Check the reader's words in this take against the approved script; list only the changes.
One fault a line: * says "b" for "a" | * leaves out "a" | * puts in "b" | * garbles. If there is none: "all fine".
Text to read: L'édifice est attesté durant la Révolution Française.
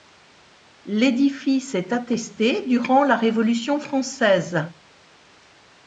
all fine